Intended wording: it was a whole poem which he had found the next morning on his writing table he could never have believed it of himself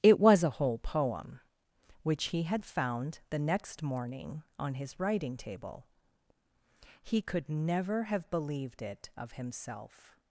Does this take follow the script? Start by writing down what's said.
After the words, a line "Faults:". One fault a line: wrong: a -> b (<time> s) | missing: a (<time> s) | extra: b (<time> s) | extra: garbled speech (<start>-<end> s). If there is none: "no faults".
it was a whole poem which he had found the next morning on his writing table he could never have believed it of himself
Faults:
no faults